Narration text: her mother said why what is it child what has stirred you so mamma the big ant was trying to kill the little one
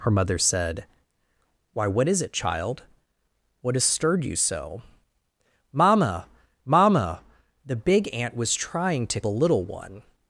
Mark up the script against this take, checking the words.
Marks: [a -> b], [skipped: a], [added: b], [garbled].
her mother said why what is it child what has stirred you so mamma [added: mamma] the big ant was trying to [skipped: kill] the little one